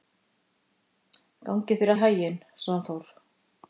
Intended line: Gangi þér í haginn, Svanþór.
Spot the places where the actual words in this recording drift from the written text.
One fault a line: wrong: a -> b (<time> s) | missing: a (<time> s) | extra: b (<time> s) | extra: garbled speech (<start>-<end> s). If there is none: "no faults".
no faults